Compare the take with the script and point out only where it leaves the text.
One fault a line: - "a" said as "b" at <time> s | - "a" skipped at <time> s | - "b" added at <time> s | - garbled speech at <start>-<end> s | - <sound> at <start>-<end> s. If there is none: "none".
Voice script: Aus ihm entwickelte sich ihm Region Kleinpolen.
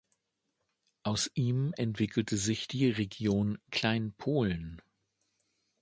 - "ihm" said as "die" at 2.7 s